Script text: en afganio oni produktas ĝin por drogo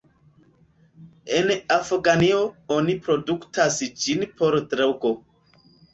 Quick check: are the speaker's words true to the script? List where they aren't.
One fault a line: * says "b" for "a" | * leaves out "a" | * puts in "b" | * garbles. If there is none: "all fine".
all fine